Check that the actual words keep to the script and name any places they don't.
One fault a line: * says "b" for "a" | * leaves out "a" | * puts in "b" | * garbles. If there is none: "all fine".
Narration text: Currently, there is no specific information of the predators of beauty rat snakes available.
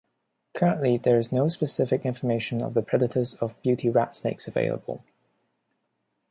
all fine